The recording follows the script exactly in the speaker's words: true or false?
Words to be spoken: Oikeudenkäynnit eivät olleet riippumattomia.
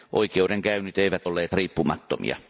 true